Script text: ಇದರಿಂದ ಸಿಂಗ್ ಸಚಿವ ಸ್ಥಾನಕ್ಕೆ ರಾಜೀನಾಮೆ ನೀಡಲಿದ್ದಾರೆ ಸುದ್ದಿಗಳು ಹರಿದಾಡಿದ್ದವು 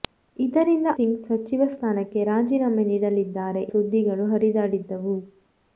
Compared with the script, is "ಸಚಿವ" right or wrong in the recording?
right